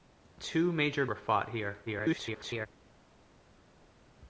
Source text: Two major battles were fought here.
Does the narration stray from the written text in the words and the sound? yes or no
yes